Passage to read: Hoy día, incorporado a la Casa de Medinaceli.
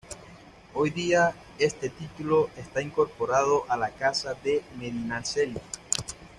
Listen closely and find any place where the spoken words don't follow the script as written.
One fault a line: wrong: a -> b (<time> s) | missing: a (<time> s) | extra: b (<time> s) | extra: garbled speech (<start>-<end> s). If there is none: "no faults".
extra: este título está (1.6 s)